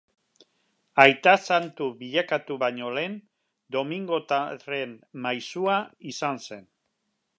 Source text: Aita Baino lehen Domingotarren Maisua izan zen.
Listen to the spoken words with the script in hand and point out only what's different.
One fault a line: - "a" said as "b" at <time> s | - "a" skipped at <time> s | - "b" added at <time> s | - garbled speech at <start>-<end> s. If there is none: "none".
- "Santu bilakatu" added at 1.4 s